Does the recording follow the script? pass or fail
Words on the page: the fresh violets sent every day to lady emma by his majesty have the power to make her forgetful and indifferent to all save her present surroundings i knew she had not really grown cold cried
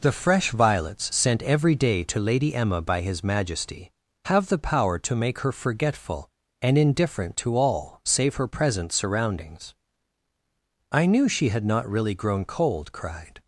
pass